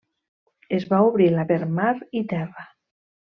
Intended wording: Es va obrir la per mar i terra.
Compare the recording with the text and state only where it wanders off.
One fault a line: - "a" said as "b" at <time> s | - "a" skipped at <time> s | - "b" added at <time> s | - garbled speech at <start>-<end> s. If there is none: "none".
none